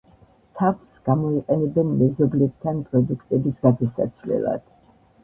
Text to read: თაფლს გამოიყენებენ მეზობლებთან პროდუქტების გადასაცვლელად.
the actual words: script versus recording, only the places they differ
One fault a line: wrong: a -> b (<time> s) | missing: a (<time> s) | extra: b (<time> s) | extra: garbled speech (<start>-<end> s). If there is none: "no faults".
no faults